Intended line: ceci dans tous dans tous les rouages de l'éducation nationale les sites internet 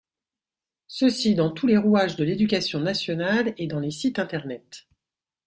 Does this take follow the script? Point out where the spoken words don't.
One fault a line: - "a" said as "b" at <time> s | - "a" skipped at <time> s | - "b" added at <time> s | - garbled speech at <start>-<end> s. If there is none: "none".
- "dans tous" skipped at 1.7 s
- "et dans" added at 3.6 s